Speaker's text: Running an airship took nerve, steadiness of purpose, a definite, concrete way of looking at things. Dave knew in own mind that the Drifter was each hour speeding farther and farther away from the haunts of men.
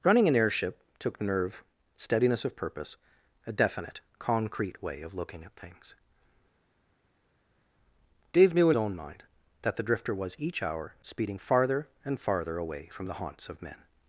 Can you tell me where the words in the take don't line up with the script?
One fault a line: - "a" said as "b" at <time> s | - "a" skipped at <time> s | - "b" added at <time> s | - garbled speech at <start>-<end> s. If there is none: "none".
none